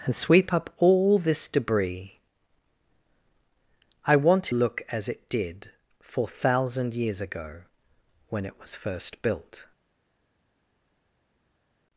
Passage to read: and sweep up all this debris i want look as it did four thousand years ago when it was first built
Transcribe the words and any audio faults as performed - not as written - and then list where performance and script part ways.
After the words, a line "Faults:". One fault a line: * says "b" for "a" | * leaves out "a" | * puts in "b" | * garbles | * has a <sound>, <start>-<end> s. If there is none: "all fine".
and sweep up all this debris i want look as it did four thousand years ago when it was first built
Faults:
all fine